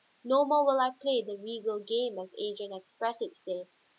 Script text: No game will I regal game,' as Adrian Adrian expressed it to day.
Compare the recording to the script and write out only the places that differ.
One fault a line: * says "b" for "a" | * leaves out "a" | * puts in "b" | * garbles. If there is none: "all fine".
* says "more" for "game"
* puts in "play the"
* leaves out "Adrian"